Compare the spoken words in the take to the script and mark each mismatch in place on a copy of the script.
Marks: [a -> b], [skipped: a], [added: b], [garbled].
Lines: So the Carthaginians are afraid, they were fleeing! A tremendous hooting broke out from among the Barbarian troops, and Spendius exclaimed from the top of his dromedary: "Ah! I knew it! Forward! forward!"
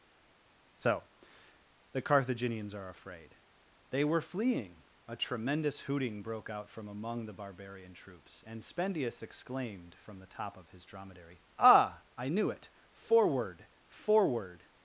So the Carthaginians are afraid, they were fleeing! A tremendous hooting broke out from among the Barbarian troops, and Spendius exclaimed from the top of his dromedary: "Ah! I knew it! Forward! forward!"